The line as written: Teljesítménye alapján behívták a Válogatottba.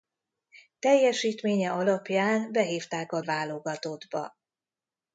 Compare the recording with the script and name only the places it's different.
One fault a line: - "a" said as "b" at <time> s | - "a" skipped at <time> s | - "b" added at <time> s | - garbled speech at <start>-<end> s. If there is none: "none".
none